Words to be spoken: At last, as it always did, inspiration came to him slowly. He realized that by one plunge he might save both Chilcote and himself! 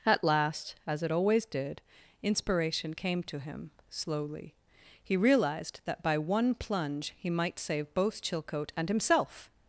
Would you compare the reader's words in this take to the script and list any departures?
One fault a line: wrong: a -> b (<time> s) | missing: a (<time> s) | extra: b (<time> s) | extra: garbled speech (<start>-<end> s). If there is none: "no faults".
no faults